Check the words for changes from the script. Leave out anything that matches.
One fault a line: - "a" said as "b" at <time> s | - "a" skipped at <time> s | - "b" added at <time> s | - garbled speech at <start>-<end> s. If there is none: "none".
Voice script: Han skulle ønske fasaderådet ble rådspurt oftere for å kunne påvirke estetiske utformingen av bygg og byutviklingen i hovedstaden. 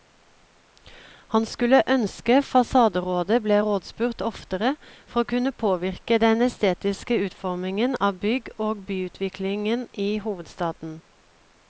- "den" added at 6.3 s